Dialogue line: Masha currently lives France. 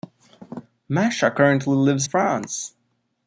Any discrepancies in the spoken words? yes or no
no